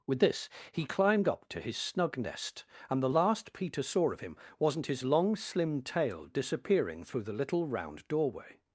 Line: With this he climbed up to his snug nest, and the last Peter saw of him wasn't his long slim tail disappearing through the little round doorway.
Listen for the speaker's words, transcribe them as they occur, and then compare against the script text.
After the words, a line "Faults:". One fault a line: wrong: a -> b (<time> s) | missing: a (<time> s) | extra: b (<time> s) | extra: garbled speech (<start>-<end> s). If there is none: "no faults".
With this he climbed up to his snug nest, and the last Peter saw of him wasn't his long slim tail disappearing through the little round doorway.
Faults:
no faults